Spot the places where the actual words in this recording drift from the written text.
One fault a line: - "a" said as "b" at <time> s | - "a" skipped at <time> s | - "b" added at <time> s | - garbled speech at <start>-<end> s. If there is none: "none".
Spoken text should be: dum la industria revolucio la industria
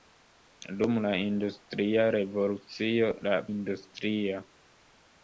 none